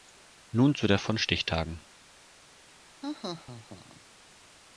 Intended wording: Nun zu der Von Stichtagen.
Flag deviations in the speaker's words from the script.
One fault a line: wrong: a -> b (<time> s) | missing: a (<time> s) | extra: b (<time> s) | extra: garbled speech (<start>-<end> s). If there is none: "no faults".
no faults